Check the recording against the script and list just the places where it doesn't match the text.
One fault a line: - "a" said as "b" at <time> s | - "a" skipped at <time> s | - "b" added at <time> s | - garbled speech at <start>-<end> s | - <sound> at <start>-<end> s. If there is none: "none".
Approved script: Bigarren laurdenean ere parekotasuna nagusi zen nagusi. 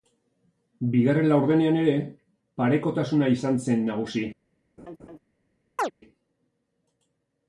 - "nagusi" said as "izan" at 3.4 s
- laugh at 4.8-5.2 s
- chirp at 5.8-5.9 s